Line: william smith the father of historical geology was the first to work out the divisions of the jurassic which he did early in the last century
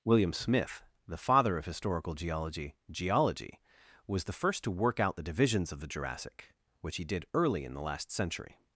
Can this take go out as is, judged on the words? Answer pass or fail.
fail